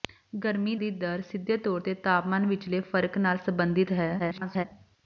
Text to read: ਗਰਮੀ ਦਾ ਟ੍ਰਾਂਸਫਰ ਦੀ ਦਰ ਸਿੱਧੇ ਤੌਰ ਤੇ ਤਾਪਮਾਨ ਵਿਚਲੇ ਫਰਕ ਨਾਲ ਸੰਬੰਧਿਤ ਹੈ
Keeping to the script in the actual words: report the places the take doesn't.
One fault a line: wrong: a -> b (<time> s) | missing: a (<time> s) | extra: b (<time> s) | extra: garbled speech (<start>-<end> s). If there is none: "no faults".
missing: ਦਾ ਟ੍ਰਾਂਸਫਰ (0.8 s)
extra: garbled speech (4.2-4.6 s)